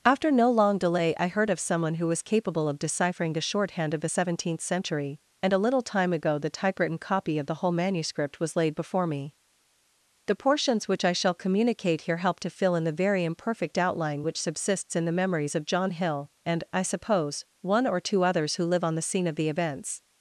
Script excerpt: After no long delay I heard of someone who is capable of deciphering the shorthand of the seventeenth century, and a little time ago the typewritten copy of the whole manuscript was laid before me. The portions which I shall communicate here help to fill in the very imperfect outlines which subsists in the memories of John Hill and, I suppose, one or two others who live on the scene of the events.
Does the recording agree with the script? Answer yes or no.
no